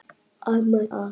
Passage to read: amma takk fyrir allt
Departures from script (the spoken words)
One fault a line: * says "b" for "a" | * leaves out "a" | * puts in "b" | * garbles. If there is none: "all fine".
* leaves out "takk fyrir"